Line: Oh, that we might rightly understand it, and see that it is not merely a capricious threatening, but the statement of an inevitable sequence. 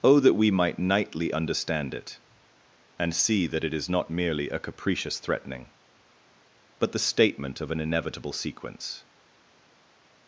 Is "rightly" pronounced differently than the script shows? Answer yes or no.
yes